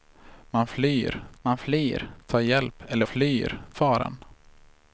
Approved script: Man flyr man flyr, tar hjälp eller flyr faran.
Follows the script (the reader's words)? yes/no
yes